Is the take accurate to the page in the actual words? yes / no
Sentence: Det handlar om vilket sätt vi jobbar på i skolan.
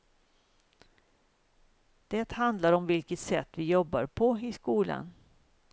yes